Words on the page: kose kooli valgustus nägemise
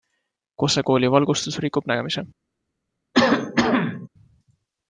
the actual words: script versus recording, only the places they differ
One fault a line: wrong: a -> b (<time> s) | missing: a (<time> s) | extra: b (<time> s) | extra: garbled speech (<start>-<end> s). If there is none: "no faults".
extra: rikub (1.6 s)